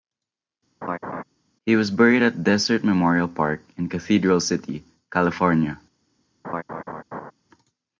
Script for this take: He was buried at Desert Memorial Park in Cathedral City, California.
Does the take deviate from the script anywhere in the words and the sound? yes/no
yes